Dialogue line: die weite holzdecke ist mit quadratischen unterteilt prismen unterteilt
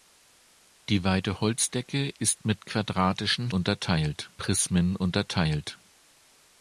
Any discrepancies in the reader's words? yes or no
no